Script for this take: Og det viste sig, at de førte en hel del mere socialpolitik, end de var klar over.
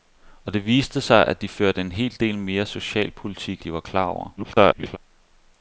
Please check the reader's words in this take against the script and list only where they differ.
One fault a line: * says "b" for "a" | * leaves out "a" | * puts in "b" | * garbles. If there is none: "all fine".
* leaves out "end"
* garbles